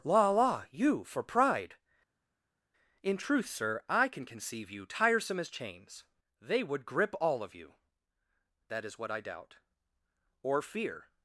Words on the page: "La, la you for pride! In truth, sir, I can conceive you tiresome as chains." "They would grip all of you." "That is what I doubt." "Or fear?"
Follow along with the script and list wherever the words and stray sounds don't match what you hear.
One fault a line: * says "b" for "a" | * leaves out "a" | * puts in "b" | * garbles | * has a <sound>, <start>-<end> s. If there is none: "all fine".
all fine